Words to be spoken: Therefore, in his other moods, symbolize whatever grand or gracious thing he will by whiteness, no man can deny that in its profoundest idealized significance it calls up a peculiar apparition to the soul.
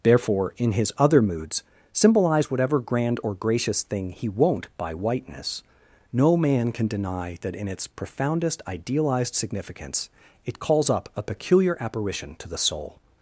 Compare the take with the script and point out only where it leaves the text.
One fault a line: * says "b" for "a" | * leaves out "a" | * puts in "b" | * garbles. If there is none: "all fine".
* says "won't" for "will"